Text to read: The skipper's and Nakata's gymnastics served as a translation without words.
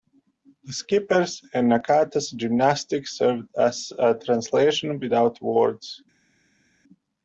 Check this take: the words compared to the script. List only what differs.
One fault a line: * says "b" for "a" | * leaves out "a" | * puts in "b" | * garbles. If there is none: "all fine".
all fine